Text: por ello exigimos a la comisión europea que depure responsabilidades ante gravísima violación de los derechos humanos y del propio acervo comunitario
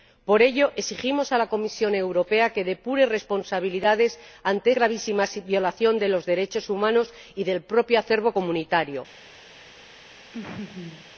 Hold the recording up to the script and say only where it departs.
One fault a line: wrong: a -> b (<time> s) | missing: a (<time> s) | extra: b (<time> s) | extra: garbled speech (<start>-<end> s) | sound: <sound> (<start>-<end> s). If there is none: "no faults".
sound: laugh (10.3-11.1 s)